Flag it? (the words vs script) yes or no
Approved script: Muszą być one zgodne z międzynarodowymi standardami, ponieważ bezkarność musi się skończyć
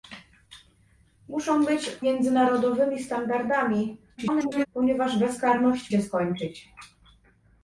yes